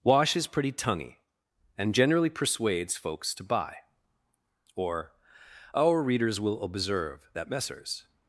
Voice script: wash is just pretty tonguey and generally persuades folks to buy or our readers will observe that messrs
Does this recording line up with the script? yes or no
no